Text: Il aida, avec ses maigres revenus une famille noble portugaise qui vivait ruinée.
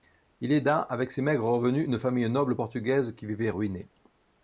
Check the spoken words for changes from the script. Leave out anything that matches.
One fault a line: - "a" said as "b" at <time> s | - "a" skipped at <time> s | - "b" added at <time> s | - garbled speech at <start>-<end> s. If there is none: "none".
none